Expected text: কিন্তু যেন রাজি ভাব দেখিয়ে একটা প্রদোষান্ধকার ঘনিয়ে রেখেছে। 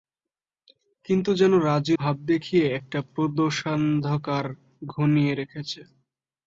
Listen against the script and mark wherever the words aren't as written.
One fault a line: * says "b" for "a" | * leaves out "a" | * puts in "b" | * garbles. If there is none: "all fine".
all fine